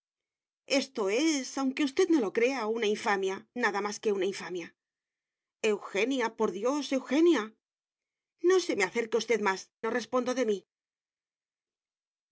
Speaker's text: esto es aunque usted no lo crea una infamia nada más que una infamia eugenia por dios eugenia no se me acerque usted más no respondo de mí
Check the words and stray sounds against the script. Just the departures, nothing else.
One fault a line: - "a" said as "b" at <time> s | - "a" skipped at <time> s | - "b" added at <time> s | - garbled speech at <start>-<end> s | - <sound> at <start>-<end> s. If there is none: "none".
none